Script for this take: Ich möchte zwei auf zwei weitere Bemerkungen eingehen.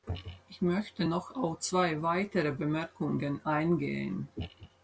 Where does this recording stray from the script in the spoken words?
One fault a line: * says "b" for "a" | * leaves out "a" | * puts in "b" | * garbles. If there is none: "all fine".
* says "noch" for "zwei"